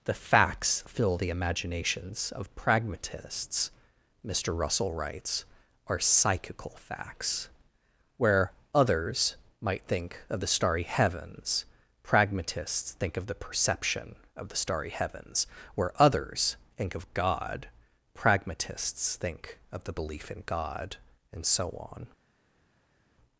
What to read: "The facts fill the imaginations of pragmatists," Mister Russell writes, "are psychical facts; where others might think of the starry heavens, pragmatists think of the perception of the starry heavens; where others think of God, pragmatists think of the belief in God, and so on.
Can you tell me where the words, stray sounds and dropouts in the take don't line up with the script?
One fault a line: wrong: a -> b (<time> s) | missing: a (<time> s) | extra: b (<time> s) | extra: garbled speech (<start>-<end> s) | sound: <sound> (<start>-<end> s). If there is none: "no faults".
no faults